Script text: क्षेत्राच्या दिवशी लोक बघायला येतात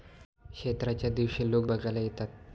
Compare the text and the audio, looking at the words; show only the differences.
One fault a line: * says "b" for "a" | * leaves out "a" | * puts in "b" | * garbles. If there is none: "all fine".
all fine